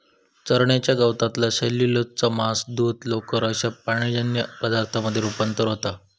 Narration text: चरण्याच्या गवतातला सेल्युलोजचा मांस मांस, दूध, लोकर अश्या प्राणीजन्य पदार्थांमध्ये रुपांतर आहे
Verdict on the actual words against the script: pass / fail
fail